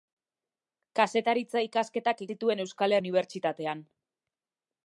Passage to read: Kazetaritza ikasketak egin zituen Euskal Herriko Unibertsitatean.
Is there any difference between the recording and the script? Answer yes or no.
yes